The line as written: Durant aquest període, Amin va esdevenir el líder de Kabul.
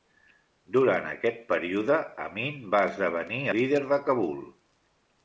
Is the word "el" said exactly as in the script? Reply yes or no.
no